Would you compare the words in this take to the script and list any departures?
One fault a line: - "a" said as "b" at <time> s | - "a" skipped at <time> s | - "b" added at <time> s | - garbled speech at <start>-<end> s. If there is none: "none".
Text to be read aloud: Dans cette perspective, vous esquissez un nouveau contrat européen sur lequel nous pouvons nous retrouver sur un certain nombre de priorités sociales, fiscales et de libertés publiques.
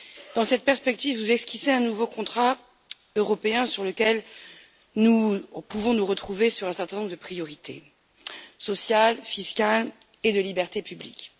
none